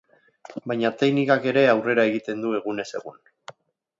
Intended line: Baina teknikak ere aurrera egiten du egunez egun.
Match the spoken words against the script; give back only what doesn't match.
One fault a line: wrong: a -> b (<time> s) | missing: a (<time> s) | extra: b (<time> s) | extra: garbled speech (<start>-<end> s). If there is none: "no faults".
no faults